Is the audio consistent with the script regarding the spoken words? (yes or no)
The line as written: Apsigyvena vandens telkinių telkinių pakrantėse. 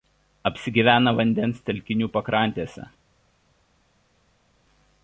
no